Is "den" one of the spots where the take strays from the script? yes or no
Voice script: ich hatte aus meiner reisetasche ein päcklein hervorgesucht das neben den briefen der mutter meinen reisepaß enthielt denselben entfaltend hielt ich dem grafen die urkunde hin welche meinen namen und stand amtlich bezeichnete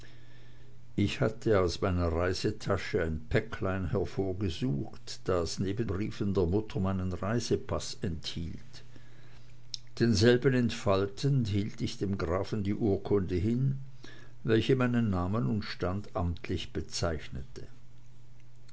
yes